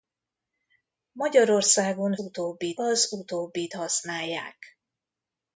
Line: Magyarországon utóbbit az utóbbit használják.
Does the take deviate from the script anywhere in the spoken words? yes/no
no